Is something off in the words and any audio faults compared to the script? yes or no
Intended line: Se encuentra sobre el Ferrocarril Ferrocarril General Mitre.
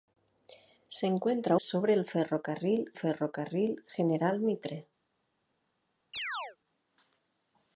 yes